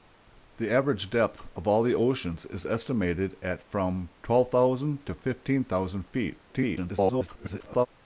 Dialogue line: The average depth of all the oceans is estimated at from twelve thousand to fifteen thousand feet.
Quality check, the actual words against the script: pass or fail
fail